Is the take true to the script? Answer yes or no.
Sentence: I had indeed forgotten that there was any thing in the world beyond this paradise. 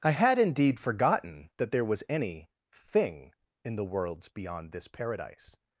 no